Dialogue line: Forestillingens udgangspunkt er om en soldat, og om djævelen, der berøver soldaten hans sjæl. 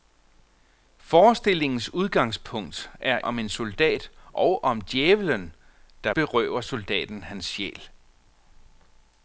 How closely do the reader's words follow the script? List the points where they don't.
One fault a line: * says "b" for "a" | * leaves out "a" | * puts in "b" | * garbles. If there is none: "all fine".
all fine